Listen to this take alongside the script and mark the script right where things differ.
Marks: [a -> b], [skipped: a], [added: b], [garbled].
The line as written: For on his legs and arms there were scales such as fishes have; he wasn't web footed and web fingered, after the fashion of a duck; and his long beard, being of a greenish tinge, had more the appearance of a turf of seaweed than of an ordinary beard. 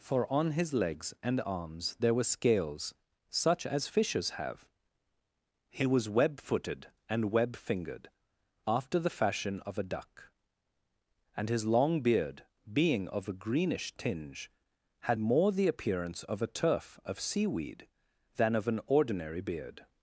For on his legs and arms there were scales such as fishes have; he [wasn't -> was] web footed and web fingered, after the fashion of a duck; and his long beard, being of a greenish tinge, had more the appearance of a turf of seaweed than of an ordinary beard.